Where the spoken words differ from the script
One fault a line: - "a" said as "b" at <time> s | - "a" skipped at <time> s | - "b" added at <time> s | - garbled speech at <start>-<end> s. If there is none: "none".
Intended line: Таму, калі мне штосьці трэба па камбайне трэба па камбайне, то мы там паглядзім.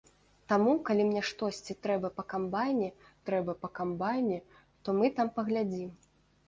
none